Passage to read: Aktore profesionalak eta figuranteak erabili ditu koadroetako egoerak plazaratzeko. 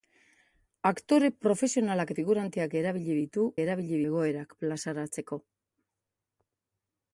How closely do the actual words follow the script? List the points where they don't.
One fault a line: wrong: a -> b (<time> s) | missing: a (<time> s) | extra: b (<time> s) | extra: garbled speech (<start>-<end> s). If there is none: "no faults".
missing: eta (2.1 s)
wrong: koadroetako -> erabili (3.6 s)